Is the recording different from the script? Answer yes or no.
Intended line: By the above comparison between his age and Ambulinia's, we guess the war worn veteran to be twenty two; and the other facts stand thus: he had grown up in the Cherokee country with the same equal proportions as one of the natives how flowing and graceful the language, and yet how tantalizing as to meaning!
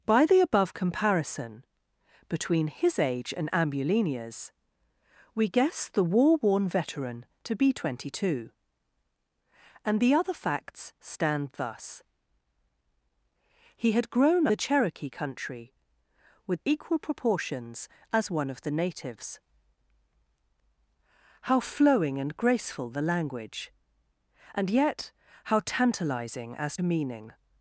yes